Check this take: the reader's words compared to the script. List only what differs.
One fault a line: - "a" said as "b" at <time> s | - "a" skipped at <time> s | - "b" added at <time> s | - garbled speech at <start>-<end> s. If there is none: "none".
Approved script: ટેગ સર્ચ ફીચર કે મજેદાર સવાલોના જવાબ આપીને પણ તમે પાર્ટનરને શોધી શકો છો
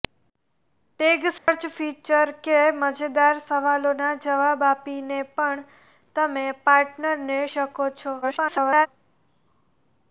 - "શોધી" skipped at 7.4 s
- garbled speech at 8.2-8.9 s